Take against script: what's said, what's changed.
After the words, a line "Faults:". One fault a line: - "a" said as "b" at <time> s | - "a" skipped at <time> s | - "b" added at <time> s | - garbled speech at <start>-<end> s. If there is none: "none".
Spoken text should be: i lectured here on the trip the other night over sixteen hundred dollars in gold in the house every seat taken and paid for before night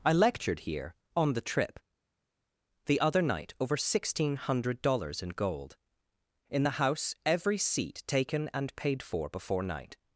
i lectured here on the trip the other night over sixteen hundred dollars in gold in the house every seat taken and paid for before night
Faults:
none